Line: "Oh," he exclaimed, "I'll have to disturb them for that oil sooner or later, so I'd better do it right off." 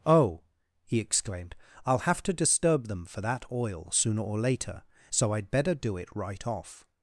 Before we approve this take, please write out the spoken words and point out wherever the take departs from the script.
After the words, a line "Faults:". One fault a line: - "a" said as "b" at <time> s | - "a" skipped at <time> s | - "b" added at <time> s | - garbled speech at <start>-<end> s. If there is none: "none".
"Oh," he exclaimed, "I'll have to disturb them for that oil sooner or later, so I'd better do it right off."
Faults:
none